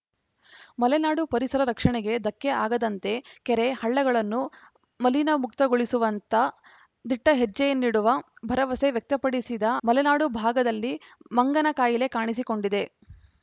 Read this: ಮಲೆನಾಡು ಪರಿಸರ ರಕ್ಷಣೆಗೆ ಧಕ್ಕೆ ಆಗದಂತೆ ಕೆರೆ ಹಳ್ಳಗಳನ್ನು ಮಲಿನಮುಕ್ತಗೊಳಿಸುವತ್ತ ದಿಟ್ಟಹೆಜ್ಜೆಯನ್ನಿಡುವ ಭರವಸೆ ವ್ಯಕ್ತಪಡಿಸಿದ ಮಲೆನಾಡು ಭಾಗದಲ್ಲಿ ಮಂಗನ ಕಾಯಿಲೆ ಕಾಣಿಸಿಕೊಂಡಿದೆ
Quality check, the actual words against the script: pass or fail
pass